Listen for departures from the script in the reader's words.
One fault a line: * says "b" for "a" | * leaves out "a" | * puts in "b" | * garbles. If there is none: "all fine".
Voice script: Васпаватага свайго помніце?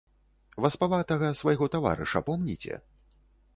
* puts in "таварыша"